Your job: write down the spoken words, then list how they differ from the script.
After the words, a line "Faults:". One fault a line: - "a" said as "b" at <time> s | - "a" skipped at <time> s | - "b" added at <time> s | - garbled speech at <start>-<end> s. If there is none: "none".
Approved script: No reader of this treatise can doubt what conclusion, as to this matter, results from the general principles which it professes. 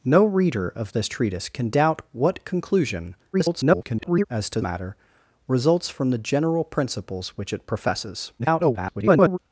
No reader of this treatise can doubt what conclusion, [garbled] as to matter, results from the general principles which it professes. [garbled]
Faults:
- garbled speech at 3.3-4.3 s
- "this" skipped at 4.6 s
- garbled speech at 8.4-9.4 s